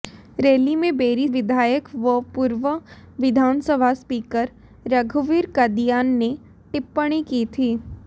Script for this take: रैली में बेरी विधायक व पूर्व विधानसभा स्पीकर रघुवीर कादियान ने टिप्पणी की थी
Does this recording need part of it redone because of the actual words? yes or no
no